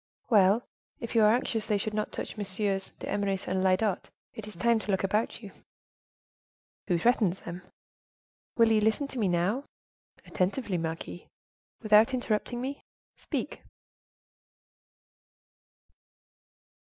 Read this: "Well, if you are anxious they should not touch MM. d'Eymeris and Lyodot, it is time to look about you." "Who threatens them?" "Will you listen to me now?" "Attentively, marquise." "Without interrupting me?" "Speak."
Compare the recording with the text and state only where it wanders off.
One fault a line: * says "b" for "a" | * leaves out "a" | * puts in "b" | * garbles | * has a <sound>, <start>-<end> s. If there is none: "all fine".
all fine